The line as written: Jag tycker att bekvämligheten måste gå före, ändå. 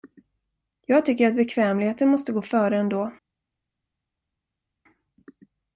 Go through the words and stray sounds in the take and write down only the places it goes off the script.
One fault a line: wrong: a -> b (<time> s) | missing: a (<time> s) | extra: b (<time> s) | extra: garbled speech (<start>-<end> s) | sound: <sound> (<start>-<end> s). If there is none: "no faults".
no faults